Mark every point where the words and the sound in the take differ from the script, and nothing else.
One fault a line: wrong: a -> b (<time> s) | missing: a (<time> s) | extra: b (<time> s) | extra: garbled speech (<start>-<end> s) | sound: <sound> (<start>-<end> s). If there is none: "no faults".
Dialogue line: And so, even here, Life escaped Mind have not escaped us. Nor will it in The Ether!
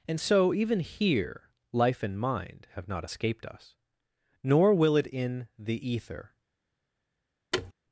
wrong: escaped -> and (2.0 s)
sound: thud (7.5-7.7 s)